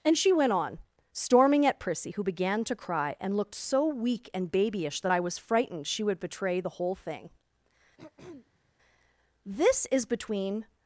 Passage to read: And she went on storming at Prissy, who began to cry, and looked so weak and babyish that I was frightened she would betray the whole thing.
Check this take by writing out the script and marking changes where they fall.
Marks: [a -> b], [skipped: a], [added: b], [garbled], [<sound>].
And she went on storming at Prissy, who began to cry, and looked so weak and babyish that I was frightened she would betray the whole thing. [throat clearing] [added: This is between]